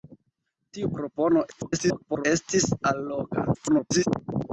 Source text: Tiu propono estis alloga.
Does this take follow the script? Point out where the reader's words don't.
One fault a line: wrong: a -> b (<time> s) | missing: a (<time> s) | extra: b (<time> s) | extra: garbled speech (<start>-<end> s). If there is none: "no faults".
extra: garbled speech (1.5-2.3 s)
extra: garbled speech (3.5-4.1 s)